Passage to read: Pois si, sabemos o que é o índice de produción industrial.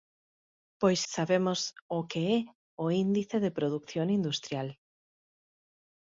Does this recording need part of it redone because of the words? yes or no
yes